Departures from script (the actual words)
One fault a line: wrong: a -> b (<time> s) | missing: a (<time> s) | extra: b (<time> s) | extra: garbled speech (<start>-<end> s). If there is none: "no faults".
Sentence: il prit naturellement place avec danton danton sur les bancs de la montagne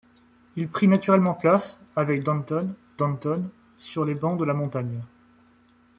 no faults